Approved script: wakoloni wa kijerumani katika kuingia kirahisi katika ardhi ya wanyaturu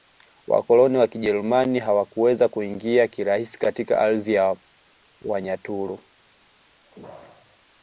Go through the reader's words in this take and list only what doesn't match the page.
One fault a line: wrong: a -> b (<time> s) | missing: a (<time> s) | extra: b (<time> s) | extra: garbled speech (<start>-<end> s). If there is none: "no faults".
wrong: katika -> hawakuweza (1.8 s)